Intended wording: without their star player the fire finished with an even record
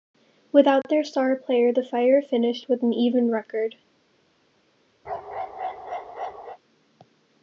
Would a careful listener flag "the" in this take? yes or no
no